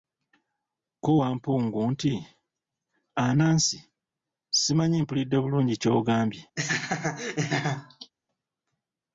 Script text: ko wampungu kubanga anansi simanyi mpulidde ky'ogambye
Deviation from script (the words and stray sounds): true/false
true